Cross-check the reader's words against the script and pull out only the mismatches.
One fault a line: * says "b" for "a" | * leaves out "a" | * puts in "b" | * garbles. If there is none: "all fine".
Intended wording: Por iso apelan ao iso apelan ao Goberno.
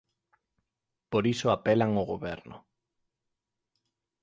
* leaves out "iso apelan ao"